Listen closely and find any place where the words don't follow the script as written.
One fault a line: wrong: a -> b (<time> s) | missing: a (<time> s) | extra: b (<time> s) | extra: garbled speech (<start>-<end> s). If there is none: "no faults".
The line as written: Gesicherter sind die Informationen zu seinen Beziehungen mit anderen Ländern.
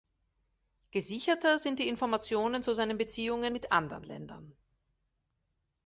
no faults